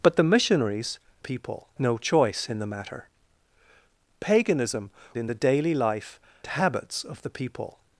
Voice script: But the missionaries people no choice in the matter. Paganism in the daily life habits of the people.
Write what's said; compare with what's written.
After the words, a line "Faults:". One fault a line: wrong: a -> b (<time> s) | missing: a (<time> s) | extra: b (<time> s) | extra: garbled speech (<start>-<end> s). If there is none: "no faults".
But the missionaries people no choice in the matter. Paganism in the daily life habits of the people.
Faults:
no faults